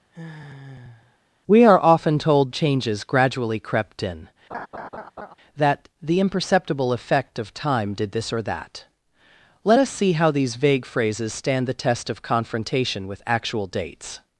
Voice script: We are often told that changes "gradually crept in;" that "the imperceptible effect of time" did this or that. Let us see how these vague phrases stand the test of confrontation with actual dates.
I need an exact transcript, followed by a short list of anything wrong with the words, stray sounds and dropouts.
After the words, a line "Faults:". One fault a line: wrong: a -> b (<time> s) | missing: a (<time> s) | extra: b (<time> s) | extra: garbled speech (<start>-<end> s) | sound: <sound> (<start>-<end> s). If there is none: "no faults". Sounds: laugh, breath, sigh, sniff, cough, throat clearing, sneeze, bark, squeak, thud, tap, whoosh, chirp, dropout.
We are often told changes "gradually crept in;" that "the imperceptible effect of time" did this or that. Let us see how these vague phrases stand the test of confrontation with actual dates.
Faults:
sound: sigh (0.1-1.2 s)
missing: that (2.5 s)
sound: laugh (4.5-5.3 s)